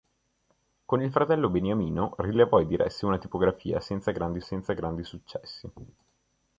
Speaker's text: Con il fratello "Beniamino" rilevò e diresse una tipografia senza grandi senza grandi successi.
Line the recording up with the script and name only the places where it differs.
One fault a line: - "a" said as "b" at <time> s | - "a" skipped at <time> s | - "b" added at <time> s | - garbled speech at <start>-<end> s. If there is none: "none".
none